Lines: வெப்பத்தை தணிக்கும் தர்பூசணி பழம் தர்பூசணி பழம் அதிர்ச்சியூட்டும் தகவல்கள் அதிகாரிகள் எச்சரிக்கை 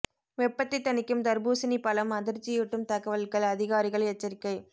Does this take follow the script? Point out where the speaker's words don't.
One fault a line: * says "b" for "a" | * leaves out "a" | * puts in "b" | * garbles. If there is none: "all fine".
* leaves out "தர்பூசணி பழம்"